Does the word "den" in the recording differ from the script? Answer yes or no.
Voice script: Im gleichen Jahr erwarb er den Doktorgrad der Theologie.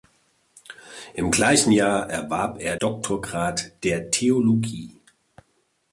yes